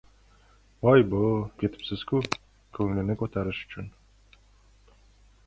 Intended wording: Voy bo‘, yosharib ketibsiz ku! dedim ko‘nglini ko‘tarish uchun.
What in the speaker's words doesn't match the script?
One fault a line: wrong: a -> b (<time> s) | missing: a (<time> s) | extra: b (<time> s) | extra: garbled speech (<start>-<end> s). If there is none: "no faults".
missing: yosharib (1.2 s)
missing: dedim (2.2 s)